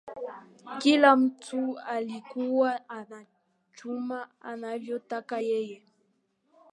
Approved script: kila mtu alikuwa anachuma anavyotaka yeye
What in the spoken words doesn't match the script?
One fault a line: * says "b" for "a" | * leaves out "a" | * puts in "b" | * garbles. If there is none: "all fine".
all fine